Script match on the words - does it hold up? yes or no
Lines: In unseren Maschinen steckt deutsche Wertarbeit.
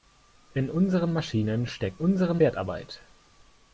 no